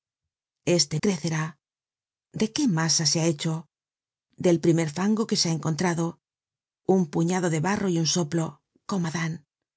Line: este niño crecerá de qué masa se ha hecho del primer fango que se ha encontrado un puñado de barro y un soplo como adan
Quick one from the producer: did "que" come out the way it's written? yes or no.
yes